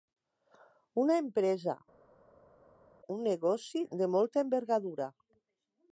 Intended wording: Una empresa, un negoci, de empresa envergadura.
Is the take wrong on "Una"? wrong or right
right